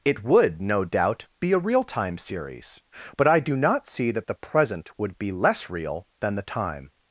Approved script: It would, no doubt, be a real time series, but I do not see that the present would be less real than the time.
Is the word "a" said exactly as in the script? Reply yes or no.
yes